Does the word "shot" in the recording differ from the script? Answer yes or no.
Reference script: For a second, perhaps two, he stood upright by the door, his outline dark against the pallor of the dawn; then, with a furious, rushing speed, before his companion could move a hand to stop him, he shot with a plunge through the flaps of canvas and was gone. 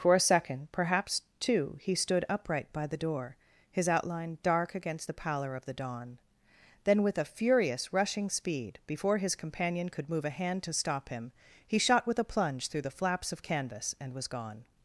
no